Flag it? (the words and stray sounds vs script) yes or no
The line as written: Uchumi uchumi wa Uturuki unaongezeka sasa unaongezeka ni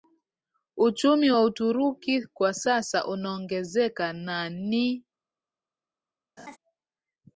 yes